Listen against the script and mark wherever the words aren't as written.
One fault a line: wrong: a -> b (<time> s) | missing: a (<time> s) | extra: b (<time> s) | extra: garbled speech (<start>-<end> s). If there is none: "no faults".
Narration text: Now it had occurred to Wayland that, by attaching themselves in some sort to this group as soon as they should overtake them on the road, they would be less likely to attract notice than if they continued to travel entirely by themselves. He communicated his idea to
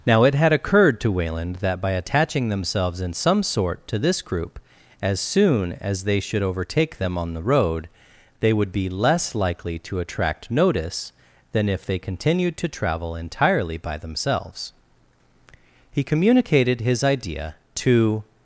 no faults